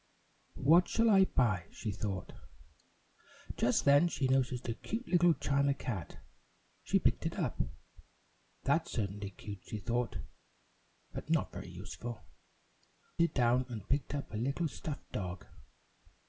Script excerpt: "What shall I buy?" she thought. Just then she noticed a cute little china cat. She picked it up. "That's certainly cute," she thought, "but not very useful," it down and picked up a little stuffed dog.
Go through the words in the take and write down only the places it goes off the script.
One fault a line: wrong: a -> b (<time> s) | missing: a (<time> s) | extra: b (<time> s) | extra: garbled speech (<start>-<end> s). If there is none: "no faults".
no faults